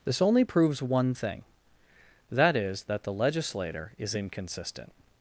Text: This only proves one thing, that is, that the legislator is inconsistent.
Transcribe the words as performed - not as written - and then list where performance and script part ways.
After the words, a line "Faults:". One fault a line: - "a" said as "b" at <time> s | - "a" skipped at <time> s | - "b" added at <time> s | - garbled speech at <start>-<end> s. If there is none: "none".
This only proves one thing, that is, that the legislator is inconsistent.
Faults:
none